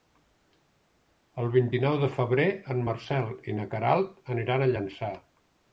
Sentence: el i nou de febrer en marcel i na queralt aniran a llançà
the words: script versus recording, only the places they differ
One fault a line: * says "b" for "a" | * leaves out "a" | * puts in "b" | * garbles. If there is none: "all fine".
* puts in "vint"